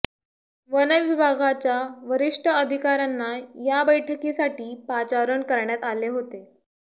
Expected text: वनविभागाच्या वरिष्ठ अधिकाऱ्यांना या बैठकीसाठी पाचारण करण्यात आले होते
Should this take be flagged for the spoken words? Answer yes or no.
no